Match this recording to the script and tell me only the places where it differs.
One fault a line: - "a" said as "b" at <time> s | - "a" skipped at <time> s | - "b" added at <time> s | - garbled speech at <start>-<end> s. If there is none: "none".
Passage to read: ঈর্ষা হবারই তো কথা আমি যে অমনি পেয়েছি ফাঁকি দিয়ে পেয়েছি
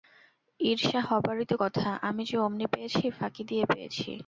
none